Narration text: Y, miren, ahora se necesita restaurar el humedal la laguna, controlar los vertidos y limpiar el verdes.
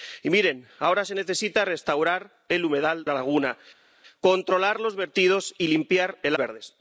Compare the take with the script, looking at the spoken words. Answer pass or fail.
pass